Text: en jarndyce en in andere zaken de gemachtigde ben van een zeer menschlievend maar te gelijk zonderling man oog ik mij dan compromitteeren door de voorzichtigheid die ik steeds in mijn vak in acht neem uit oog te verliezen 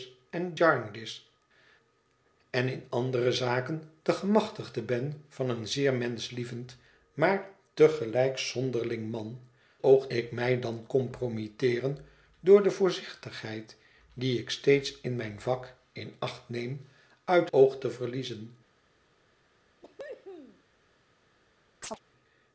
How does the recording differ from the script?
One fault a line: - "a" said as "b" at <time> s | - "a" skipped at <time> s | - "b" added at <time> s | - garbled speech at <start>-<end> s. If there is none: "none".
none